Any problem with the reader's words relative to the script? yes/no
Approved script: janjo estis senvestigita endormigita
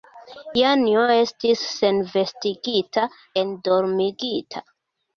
no